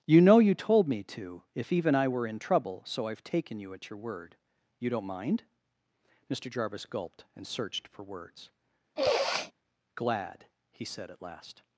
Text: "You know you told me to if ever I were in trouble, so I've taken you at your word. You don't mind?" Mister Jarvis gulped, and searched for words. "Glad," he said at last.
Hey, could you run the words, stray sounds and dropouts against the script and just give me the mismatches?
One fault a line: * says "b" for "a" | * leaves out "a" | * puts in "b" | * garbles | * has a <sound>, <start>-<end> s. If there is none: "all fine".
* says "even" for "ever"
* has a sniff, 9.0-9.5 s